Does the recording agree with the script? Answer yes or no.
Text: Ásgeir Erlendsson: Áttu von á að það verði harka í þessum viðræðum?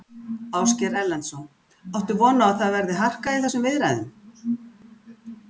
yes